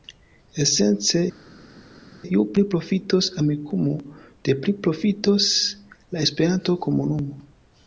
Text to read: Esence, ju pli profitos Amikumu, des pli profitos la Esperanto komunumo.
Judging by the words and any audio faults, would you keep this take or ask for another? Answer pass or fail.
pass